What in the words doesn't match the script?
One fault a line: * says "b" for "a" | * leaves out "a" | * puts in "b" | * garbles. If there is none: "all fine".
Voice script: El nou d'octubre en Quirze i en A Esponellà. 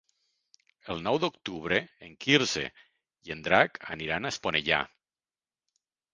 * puts in "Drac aniran"